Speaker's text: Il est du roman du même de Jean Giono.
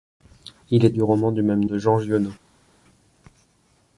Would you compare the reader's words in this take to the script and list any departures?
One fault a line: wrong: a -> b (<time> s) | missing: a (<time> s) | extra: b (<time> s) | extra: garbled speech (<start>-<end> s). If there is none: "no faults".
no faults